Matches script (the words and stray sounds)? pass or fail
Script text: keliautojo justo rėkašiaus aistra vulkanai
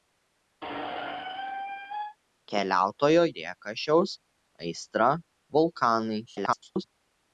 fail